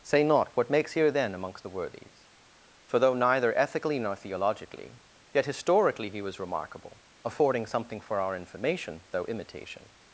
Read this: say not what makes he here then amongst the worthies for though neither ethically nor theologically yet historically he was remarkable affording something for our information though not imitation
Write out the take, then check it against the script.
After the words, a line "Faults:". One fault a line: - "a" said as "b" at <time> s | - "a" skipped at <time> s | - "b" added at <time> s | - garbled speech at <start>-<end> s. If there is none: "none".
say not what makes here then amongst the worthies for though neither ethically nor theologically yet historically he was remarkable affording something for our information though imitation
Faults:
- "he" skipped at 0.9 s
- "not" skipped at 9.2 s